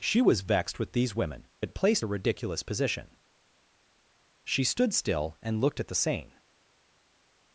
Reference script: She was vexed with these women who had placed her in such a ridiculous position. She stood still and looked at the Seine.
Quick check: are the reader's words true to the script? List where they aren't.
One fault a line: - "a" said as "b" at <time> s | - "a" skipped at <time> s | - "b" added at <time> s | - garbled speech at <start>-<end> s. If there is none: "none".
- "who" skipped at 1.5 s
- "her in such" skipped at 2.1 s